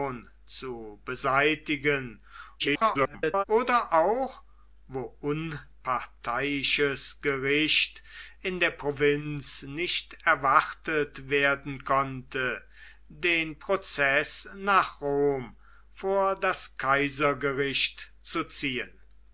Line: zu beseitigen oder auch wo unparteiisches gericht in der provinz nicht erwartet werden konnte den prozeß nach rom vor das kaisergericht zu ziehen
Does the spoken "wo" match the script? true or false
true